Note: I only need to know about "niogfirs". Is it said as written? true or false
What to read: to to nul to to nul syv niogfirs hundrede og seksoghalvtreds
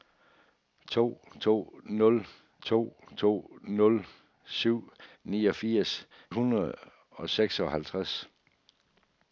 true